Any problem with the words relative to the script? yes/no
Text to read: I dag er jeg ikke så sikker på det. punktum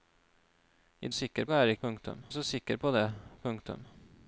yes